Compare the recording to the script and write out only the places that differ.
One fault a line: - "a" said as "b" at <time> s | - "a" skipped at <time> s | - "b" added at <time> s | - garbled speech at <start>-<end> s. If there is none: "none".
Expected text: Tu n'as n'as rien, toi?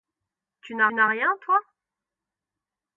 none